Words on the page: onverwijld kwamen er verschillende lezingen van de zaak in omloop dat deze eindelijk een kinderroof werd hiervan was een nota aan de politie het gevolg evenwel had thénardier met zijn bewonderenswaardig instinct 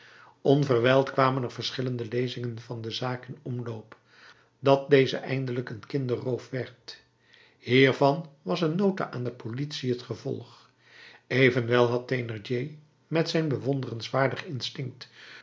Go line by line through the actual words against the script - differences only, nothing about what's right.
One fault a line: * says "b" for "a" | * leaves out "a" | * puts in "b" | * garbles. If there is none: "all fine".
all fine